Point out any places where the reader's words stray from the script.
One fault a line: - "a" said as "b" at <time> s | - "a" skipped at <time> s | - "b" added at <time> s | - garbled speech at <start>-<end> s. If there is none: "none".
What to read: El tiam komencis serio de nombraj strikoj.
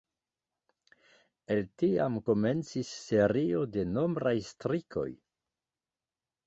none